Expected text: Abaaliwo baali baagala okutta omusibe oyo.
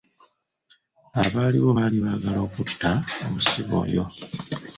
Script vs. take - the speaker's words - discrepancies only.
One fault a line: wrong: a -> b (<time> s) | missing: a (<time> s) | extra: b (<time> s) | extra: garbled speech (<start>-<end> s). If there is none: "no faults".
no faults